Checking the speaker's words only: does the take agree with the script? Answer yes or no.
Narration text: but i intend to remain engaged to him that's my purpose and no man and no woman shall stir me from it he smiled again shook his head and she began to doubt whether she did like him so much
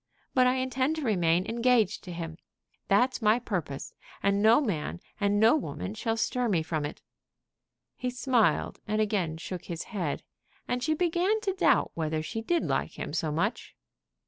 no